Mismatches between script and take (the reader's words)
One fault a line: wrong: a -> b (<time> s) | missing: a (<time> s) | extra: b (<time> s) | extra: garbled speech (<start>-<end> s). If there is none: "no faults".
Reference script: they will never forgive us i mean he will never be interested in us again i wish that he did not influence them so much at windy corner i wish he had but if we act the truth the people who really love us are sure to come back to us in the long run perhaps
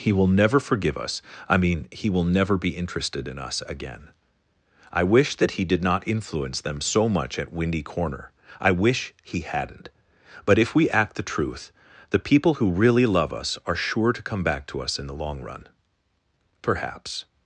wrong: they -> he (0.0 s)
wrong: had -> hadn't (9.4 s)